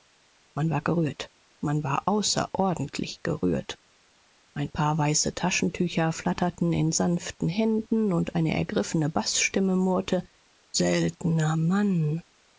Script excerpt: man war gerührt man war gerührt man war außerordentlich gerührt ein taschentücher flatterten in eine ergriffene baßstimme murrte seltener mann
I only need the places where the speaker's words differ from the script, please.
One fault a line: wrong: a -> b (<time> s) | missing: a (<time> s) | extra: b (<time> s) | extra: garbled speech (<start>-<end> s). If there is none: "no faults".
missing: gerührt man war (2.1 s)
extra: paar weiße (4.7 s)
extra: sanften händen und (6.9 s)